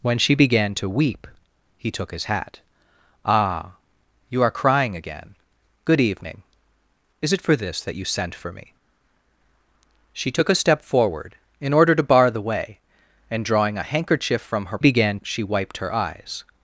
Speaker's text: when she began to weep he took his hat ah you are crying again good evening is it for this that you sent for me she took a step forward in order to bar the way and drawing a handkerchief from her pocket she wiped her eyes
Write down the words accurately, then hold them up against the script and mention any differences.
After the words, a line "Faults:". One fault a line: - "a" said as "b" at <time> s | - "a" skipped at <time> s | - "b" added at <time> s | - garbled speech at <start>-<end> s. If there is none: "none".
when she began to weep he took his hat ah you are crying again good evening is it for this that you sent for me she took a step forward in order to bar the way and drawing a handkerchief from her began she wiped her eyes
Faults:
- "pocket" said as "began" at 14.8 s